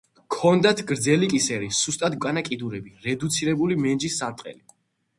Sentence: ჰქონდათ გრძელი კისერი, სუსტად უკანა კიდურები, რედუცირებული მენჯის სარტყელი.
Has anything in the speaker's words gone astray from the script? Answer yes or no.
no